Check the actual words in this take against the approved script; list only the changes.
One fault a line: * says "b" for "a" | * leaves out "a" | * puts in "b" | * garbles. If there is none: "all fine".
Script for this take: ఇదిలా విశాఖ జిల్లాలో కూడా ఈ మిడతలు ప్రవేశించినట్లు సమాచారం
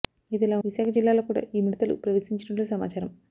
all fine